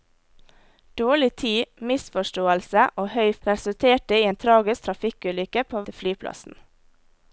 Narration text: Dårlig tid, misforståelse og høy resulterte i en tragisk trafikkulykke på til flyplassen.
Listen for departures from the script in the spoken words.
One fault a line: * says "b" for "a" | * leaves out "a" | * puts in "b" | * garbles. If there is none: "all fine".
all fine